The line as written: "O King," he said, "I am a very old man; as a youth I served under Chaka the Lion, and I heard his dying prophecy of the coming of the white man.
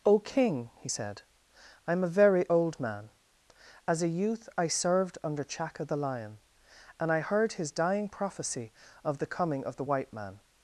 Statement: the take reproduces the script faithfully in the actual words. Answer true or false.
true